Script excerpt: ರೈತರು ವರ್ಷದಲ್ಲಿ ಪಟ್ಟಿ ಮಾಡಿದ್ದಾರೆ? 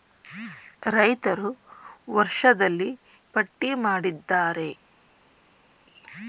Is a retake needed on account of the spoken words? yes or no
no